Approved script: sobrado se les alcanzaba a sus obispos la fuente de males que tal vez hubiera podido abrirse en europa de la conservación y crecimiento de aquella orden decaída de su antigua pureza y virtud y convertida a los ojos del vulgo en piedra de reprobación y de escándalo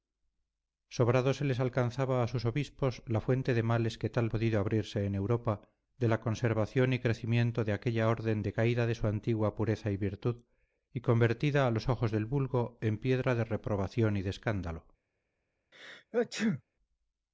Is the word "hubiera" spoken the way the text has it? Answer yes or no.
no